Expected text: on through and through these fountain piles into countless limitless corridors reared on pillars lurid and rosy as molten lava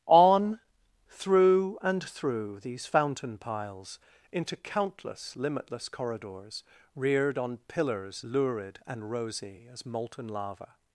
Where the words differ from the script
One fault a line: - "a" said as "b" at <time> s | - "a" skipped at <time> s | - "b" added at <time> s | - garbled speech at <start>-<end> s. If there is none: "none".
none